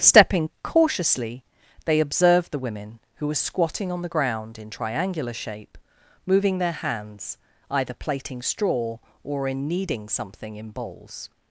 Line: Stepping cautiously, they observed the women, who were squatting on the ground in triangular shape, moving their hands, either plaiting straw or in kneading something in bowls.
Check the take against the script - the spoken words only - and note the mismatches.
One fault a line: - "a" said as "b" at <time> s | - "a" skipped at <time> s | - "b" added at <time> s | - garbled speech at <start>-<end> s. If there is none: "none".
none